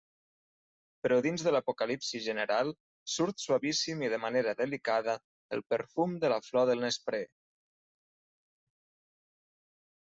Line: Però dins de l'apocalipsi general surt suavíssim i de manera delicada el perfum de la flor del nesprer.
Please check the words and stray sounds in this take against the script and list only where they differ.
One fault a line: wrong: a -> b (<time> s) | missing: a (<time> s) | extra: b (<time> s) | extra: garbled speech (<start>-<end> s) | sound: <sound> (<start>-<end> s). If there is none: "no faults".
no faults